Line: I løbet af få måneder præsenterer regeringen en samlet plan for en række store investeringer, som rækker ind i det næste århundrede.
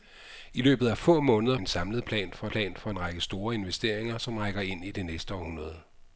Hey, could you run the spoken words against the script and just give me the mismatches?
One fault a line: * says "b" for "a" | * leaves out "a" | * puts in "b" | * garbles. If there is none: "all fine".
* says "en samlet plan for" for "præsenterer regeringen en samlet"